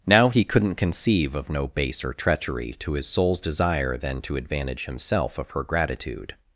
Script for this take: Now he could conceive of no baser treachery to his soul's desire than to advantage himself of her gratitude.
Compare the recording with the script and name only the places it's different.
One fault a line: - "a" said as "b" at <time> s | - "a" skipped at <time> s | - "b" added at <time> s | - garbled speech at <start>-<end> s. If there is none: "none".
- "could" said as "couldn't" at 0.4 s